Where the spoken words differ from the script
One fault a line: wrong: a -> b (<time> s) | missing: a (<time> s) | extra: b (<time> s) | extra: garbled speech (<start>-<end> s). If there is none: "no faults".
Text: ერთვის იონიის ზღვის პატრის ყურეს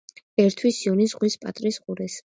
no faults